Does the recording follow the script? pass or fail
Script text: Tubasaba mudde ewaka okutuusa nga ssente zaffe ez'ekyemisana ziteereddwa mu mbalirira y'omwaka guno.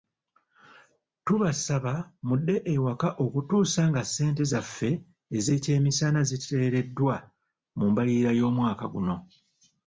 pass